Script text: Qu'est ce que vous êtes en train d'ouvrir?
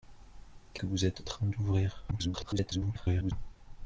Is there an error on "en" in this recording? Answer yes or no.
yes